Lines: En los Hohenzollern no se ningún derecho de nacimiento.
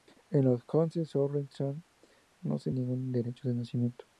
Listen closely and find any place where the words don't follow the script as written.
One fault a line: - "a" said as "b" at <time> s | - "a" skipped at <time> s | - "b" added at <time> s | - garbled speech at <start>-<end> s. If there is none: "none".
none